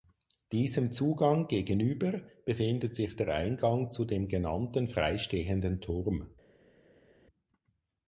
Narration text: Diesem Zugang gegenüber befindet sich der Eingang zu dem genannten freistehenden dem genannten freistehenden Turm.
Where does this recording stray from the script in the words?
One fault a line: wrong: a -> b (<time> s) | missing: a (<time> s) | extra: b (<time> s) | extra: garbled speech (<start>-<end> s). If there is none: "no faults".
missing: dem genannten freistehenden (5.8 s)